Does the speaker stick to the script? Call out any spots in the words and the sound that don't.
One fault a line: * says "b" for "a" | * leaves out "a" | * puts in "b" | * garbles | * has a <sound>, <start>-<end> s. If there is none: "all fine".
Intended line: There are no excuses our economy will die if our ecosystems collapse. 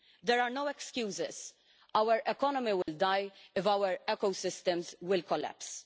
* has a dropout, 2.8-2.9 s